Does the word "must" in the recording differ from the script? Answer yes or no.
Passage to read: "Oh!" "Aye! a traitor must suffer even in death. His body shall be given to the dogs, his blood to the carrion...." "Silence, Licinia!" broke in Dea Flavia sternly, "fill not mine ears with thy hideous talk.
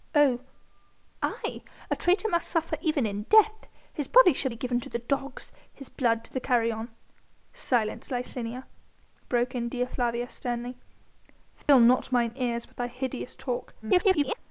no